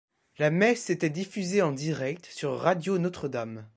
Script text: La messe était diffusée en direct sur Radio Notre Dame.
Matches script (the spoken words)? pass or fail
pass